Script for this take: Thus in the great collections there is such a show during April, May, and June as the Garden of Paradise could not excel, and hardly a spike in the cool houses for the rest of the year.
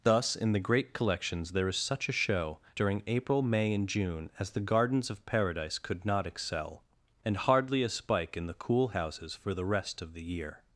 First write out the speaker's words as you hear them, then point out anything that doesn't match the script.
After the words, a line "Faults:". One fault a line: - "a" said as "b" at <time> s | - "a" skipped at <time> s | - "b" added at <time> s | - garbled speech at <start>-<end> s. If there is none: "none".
Thus in the great collections there is such a show during April, May, and June as the Gardens of Paradise could not excel, and hardly a spike in the cool houses for the rest of the year.
Faults:
- "Garden" said as "Gardens" at 4.6 s